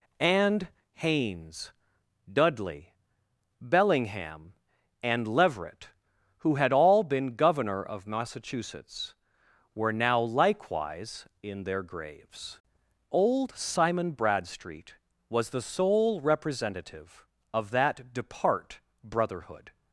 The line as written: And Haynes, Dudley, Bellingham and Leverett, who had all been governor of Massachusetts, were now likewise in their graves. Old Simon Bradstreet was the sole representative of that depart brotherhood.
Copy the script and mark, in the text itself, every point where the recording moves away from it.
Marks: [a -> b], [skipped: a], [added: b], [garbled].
And Haynes, Dudley, Bellingham and Leverett, who had all been governor of Massachusetts, were now likewise in their graves. Old Simon Bradstreet was the sole representative of that depart brotherhood.